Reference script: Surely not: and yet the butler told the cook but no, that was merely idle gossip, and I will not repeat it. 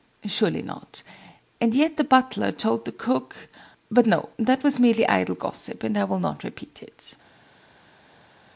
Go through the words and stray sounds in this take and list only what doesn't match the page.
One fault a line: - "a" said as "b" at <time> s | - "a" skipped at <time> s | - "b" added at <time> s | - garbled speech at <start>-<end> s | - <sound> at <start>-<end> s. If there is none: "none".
none